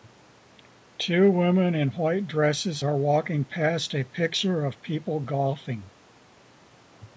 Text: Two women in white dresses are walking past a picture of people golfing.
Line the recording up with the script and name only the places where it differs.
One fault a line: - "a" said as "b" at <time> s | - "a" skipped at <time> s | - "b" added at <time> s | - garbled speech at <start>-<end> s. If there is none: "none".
none